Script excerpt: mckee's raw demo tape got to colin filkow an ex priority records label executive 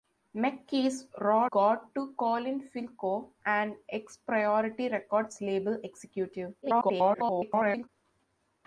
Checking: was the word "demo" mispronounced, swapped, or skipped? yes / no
yes